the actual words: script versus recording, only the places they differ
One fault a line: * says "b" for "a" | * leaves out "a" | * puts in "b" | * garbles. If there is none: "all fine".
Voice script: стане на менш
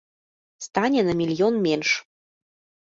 * puts in "мільён"